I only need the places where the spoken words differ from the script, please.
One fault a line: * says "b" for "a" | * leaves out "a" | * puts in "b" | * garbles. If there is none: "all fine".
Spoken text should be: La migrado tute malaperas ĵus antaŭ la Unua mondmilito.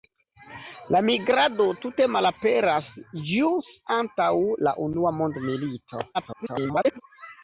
* garbles